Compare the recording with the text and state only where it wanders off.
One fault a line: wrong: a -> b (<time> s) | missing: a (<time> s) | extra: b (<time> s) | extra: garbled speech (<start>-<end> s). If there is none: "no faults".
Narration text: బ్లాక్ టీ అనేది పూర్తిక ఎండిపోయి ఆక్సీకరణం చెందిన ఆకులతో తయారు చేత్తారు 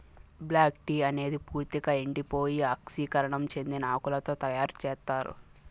no faults